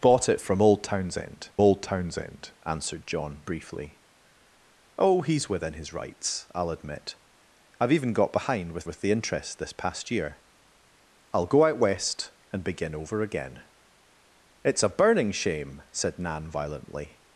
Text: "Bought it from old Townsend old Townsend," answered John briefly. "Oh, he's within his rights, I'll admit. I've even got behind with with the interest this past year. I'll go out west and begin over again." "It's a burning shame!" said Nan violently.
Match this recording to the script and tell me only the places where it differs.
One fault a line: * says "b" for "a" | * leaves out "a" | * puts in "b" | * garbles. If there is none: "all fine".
all fine